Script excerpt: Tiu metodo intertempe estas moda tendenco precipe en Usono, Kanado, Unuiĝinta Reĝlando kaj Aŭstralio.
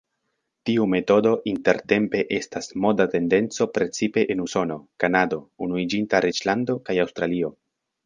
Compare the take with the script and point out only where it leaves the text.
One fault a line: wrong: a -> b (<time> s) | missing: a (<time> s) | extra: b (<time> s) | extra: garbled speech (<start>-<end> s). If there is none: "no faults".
no faults